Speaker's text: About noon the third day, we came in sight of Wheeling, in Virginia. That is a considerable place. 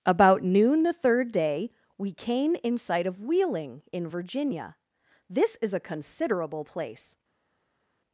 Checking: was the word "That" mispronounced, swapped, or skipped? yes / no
yes